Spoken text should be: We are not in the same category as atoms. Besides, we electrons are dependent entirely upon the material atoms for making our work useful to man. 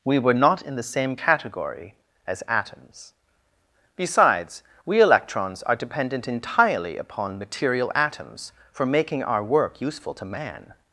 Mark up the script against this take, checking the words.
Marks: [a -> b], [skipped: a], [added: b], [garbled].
We [are -> were] not in the same category as atoms. Besides, we electrons are dependent entirely upon [skipped: the] material atoms for making our work useful to man.